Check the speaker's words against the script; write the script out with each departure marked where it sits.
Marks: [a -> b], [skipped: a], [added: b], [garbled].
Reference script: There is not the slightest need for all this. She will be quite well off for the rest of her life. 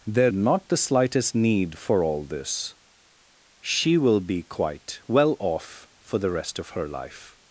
There [skipped: is] not the slightest need for all this. She will be quite well off for the rest of her life.